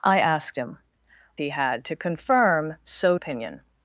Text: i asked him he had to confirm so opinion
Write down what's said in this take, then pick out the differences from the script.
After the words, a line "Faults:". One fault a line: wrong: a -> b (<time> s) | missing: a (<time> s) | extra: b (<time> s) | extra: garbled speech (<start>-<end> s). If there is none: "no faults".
i asked him he had to confirm so opinion
Faults:
no faults